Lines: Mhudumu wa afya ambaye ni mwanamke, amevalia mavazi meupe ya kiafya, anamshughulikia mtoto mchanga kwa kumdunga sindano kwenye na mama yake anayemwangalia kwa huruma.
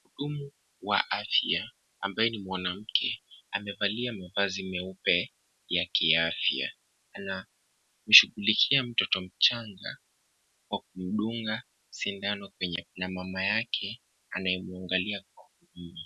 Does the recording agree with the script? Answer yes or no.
yes